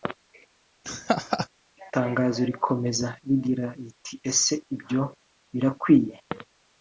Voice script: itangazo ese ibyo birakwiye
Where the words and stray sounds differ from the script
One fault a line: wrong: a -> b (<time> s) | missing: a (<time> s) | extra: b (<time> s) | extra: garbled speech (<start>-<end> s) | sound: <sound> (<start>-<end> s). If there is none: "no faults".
sound: laugh (0.8-1.5 s)
extra: rikomeza rigira riti (2.5 s)